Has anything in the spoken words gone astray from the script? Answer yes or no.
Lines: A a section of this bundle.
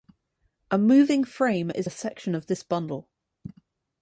yes